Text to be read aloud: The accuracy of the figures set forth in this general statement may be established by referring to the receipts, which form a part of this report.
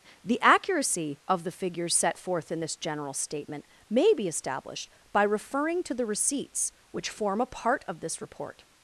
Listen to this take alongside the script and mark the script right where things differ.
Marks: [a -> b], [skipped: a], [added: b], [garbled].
The accuracy of the figures set forth in this general statement may be established by referring to the receipts, which form a part of this report.